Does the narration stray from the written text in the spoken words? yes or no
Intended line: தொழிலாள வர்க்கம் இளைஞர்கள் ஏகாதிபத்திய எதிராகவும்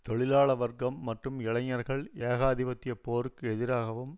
yes